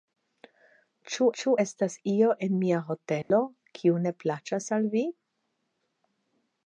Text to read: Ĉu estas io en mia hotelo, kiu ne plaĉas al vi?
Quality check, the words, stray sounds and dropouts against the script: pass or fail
fail